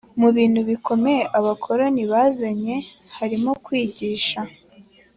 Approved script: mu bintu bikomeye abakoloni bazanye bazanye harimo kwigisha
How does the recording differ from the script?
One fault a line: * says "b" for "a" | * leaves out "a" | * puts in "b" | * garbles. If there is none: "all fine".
* leaves out "bazanye"